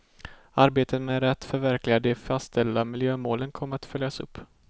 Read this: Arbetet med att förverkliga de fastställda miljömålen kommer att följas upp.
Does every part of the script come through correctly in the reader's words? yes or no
yes